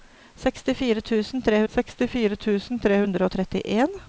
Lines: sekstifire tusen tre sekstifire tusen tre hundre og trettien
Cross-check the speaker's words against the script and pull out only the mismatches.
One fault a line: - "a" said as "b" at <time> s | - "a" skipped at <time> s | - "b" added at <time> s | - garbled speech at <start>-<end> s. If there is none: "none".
none